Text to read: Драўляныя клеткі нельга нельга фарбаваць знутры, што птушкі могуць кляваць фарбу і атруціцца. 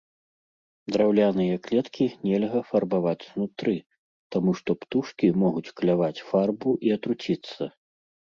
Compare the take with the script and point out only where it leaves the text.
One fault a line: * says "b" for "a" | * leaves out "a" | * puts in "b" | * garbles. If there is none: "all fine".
* leaves out "нельга"
* puts in "таму"